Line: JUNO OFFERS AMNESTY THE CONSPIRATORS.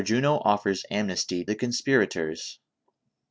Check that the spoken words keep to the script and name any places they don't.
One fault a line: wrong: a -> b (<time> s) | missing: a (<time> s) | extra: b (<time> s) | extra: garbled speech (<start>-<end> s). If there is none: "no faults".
no faults